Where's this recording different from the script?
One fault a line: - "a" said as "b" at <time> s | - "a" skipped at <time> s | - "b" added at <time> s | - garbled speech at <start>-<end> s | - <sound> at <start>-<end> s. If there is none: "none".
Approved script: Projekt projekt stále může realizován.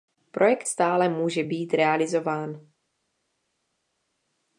- "projekt" skipped at 0.7 s
- "být" added at 1.4 s